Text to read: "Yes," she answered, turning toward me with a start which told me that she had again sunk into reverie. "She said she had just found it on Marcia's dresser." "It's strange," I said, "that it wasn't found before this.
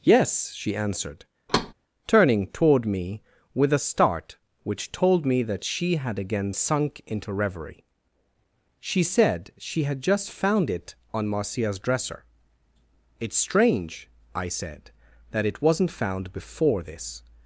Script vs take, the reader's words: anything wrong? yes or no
no